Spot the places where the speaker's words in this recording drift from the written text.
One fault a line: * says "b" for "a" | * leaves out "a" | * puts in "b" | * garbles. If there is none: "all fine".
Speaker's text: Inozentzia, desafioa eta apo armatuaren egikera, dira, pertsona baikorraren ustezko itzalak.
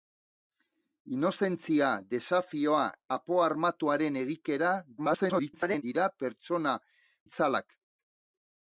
* leaves out "eta"
* garbles
* leaves out "baikorraren ustezko"